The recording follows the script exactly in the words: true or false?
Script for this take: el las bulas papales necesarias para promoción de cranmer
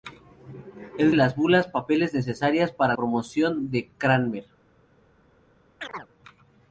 true